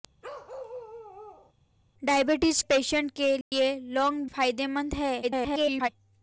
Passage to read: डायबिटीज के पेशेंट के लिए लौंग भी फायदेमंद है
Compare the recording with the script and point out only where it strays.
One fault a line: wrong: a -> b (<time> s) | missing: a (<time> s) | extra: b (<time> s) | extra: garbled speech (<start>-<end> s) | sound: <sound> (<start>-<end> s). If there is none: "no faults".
sound: bark (0.2-1.5 s)
missing: के (2.6 s)
sound: dropout (3.4-3.5 s)
missing: भी (4.3 s)
extra: garbled speech (5.2-5.9 s)